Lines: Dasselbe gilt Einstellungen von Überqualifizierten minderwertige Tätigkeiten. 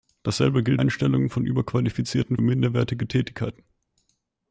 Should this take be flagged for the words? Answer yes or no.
no